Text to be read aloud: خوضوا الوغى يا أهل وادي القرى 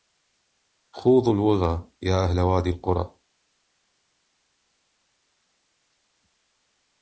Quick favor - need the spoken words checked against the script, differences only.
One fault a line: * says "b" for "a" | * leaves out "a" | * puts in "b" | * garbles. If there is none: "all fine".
all fine